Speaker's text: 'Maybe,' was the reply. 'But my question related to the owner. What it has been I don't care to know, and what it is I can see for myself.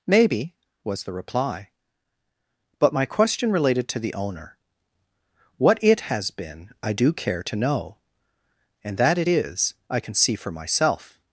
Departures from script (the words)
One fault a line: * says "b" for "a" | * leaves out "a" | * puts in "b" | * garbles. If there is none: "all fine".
* says "do" for "don't"
* says "that" for "what"